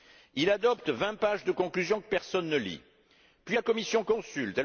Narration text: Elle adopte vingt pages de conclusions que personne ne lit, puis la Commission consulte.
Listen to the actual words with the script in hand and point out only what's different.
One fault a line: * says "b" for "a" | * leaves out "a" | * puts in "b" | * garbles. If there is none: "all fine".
* says "Il" for "Elle"